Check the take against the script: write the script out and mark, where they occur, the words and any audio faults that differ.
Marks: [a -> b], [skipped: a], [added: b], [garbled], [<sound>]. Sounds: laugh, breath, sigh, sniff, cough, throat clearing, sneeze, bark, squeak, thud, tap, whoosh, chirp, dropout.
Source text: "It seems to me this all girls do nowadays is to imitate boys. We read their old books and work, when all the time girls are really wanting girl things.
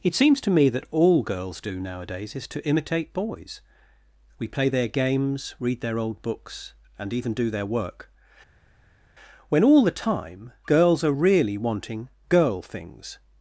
"It seems to me [this -> that] all girls do nowadays is to imitate boys. We [added: play their games] read their old books and [added: even do their] work, when all the time girls are really wanting girl things.